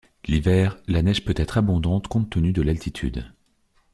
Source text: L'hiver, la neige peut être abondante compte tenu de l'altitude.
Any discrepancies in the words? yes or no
no